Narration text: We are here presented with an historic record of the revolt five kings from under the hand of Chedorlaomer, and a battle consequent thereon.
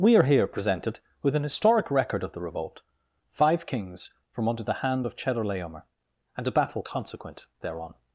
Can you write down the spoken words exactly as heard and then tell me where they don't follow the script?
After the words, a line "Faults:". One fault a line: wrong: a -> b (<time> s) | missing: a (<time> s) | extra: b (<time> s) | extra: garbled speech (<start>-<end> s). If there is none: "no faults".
We are here presented with an historic record of the revolt five kings from under the hand of Chedorlaomer, and a battle consequent thereon.
Faults:
no faults